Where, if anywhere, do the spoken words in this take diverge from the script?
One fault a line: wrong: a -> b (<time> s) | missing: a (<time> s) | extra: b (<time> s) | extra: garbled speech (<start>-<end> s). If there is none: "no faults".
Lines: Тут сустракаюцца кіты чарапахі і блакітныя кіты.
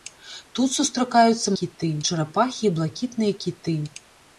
no faults